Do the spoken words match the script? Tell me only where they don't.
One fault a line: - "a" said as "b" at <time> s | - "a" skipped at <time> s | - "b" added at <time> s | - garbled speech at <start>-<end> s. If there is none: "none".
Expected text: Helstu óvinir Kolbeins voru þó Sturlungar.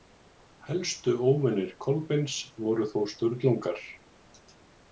none